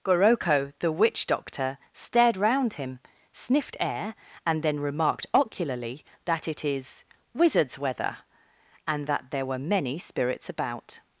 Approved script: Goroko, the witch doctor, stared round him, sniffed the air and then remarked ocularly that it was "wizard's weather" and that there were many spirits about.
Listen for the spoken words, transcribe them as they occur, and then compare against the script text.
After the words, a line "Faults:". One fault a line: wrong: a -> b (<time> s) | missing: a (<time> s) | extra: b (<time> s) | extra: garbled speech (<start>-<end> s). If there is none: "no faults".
Goroko, the witch doctor, stared round him, sniffed air and then remarked ocularly that it is "wizard's weather" and that there were many spirits about.
Faults:
missing: the (3.8 s)
wrong: was -> is (6.7 s)